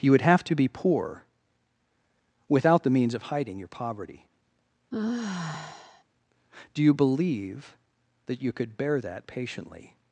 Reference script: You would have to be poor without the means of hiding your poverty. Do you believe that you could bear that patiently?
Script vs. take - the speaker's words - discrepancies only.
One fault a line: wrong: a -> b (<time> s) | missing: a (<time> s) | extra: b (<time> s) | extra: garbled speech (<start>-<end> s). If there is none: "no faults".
no faults